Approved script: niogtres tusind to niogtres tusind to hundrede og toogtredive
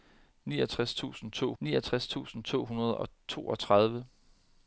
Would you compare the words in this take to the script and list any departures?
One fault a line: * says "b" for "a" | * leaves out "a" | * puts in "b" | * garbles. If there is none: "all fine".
all fine